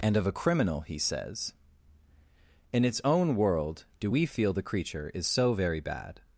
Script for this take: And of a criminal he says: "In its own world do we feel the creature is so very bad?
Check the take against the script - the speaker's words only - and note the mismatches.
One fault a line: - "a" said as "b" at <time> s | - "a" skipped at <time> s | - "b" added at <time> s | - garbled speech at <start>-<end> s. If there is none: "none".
none